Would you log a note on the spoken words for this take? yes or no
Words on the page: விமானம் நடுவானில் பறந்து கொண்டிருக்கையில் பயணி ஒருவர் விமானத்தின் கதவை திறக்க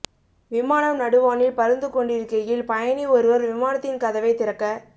no